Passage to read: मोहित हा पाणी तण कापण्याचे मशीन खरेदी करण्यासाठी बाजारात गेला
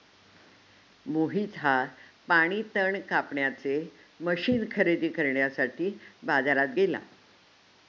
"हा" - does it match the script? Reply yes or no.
yes